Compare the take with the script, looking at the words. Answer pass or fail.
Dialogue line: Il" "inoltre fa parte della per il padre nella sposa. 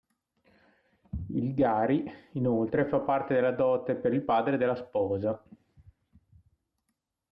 fail